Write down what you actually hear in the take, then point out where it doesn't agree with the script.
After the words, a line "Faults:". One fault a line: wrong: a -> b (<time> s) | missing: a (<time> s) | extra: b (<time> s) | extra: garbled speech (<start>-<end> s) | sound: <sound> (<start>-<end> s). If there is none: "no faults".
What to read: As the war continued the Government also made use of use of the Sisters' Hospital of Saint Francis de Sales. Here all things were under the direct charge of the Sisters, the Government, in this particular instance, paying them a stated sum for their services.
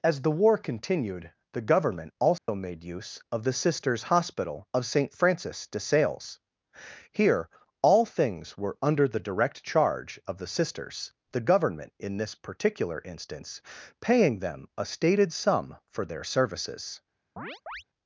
As the war continued the Government also made use of the Sisters' Hospital of Saint Francis de Sales. Here all things were under the direct charge of the Sisters, the Government, in this particular instance, paying them a stated sum for their services.
Faults:
sound: dropout (2.4-2.5 s)
missing: use of (3.4 s)
sound: chirp (17.4-17.8 s)